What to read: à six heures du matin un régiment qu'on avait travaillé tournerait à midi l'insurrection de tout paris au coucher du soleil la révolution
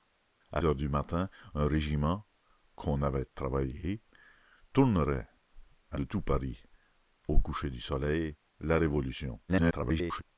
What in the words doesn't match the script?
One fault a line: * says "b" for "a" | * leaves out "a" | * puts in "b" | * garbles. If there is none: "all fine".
* leaves out "six"
* leaves out "midi l'insurrection"
* garbles